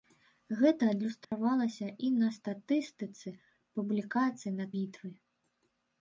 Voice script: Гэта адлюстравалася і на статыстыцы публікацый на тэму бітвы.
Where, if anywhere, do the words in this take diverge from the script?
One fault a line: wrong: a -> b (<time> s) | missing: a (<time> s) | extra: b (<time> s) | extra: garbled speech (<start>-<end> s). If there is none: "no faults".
missing: тэму (4.7 s)